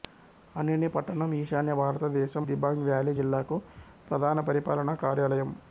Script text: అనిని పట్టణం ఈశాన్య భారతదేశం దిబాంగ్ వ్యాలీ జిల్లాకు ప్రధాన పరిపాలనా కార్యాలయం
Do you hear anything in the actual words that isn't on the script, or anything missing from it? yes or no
no